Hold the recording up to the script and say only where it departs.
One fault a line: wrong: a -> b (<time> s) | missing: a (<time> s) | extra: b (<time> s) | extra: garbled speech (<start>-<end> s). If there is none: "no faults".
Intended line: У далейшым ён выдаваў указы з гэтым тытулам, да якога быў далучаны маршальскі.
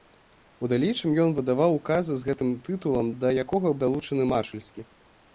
missing: быў (3.8 s)